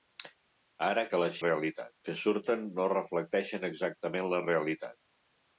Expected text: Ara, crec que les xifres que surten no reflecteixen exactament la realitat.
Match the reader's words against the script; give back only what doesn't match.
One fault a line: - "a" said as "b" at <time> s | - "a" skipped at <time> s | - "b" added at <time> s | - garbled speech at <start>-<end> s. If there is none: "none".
- "crec" skipped at 1.0 s
- "xifres" said as "realitat" at 1.4 s